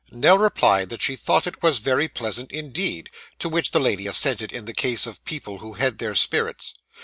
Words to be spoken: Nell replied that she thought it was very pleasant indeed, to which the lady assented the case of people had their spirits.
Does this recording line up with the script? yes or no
no